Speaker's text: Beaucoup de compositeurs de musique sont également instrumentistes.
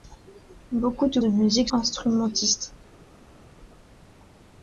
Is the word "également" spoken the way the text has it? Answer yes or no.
no